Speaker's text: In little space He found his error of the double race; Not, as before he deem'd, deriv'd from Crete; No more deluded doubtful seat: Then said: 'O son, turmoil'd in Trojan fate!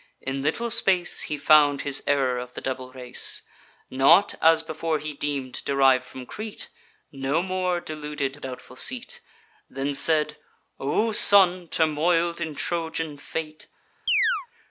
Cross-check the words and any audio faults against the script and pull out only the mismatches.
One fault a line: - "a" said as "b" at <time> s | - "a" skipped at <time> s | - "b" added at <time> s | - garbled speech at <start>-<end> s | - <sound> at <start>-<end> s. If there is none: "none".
- chirp at 14.1-14.5 s